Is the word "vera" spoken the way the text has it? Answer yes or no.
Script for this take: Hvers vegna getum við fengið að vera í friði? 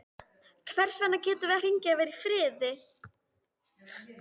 yes